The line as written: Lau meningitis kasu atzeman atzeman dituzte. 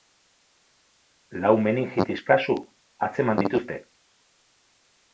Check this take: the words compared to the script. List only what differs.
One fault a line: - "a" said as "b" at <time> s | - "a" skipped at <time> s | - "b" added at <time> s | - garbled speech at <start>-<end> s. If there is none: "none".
- "atzeman" skipped at 3.5 s